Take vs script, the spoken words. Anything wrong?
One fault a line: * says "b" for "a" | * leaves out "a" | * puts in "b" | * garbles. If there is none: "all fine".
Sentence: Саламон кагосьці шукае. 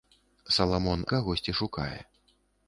all fine